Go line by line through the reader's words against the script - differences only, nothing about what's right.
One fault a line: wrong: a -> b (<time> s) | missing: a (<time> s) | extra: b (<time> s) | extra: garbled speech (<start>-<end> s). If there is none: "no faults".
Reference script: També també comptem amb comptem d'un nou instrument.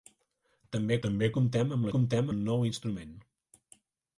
no faults